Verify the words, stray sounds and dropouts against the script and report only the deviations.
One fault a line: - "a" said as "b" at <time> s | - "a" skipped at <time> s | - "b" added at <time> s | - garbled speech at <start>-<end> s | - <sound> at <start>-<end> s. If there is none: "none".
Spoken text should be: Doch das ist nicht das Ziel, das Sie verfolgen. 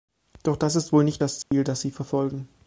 - "wohl" added at 0.9 s
- dropout at 1.4-1.5 s